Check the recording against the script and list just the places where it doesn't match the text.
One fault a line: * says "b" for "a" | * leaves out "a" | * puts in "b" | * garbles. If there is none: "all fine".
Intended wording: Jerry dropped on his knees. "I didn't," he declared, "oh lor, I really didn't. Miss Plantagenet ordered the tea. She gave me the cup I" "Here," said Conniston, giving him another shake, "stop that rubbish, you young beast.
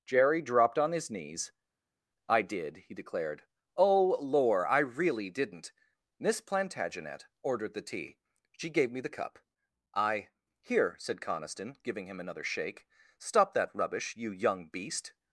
* says "did" for "didn't"